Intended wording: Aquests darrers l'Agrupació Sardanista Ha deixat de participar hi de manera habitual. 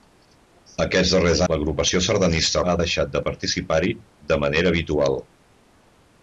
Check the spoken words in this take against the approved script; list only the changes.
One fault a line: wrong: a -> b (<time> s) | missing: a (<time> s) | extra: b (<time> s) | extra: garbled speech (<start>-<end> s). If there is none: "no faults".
no faults